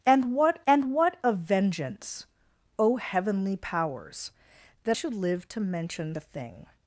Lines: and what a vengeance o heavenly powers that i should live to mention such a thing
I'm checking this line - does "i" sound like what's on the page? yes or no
no